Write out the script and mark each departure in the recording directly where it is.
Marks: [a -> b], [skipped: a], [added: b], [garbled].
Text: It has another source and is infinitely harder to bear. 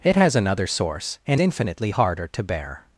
It has another source and [skipped: is] infinitely harder to bear.